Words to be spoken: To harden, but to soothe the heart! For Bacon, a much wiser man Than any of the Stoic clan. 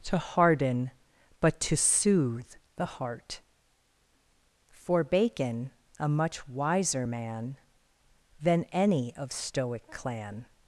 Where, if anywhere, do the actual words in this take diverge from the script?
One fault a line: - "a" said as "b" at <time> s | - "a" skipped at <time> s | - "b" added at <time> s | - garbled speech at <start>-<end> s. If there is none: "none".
- "the" skipped at 9.3 s